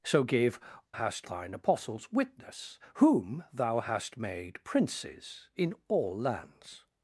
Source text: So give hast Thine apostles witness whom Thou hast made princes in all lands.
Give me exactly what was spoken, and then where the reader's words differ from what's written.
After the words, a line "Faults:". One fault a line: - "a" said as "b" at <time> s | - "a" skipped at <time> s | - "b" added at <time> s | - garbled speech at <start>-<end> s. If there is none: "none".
So give hast Thine apostles witness whom Thou hast made princes in all lands.
Faults:
none